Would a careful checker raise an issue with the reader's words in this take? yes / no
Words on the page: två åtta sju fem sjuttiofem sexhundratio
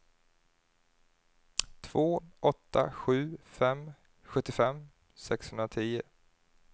no